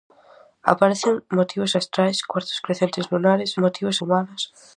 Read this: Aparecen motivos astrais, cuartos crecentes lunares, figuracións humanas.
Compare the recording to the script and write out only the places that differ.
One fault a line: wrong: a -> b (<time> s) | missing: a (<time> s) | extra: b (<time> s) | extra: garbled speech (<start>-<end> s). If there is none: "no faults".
wrong: figuracións -> motivos (3.6 s)